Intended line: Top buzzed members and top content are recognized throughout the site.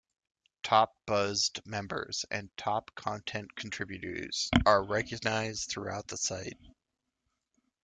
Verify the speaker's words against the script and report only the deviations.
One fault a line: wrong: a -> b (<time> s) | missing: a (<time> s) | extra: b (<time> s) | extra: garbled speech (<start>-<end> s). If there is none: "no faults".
extra: contributors (3.5 s)